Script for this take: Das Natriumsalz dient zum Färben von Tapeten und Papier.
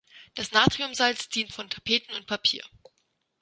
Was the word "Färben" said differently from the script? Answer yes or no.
yes